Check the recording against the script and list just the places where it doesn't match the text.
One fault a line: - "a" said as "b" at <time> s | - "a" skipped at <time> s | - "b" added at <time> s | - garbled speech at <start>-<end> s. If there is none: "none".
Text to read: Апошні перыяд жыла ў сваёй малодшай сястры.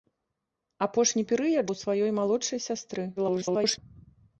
- "жыла" skipped at 1.7 s
- garbled speech at 3.2-3.8 s